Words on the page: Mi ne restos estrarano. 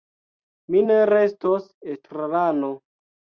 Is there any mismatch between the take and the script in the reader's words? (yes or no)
no